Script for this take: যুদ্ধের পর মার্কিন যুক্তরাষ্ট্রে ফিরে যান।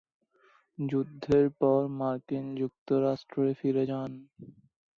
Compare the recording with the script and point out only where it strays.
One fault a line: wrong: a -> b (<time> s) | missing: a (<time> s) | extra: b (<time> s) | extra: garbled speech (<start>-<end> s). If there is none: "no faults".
no faults